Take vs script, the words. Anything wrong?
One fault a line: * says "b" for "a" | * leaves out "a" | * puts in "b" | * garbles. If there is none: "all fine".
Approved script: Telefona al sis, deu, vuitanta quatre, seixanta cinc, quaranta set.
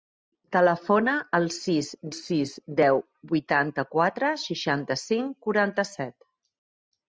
* puts in "sis"